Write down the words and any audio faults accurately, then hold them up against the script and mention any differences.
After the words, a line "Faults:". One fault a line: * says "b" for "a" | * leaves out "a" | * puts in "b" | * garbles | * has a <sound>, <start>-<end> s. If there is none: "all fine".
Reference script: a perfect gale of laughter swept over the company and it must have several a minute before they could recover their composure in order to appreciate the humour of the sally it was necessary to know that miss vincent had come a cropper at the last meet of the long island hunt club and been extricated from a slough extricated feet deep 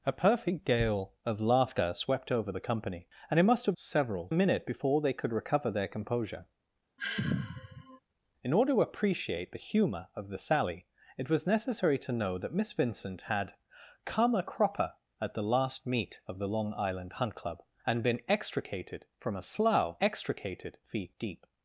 a perfect gale of laughter swept over the company and it must have several a minute before they could recover their composure in order to appreciate the humour of the sally it was necessary to know that miss vincent had come a cropper at the last meet of the long island hunt club and been extricated from a slough extricated feet deep
Faults:
* has a sigh, 7.0-8.0 s